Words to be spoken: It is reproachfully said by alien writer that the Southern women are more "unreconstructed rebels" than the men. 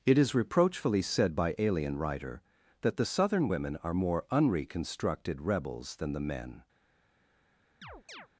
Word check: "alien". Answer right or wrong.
right